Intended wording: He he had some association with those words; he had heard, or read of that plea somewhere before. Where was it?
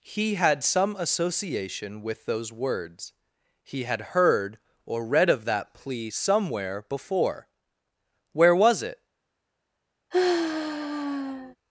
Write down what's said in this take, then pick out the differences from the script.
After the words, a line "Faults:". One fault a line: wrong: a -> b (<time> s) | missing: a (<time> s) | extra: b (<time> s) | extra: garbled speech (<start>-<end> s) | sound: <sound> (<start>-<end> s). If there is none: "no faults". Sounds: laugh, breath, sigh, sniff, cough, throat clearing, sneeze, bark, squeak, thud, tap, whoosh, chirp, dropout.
He had some association with those words; he had heard, or read of that plea somewhere before. Where was it?
Faults:
missing: he (0.3 s)
sound: sigh (10.1-11.6 s)